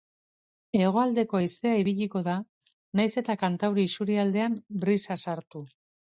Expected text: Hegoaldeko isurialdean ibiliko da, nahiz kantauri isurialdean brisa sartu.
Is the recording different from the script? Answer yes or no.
yes